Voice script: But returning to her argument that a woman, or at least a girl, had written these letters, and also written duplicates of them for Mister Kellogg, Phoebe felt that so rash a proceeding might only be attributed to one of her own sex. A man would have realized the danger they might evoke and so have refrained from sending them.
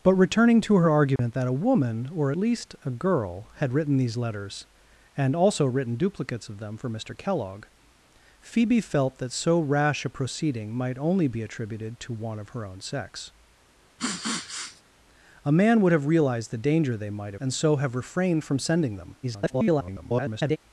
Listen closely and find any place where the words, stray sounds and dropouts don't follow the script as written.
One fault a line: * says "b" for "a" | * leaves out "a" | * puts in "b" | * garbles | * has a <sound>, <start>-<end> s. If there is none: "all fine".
* has a dropout, 1.2-1.2 s
* leaves out "at"
* has a sniff, 14.0-14.8 s
* leaves out "evoke"
* garbles